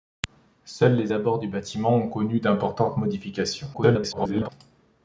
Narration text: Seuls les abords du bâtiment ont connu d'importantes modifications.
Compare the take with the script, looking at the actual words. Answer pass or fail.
fail